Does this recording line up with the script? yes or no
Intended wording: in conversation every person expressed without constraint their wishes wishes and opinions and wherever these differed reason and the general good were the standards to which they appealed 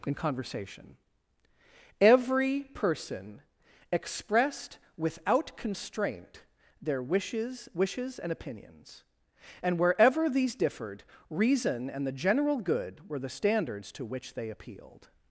yes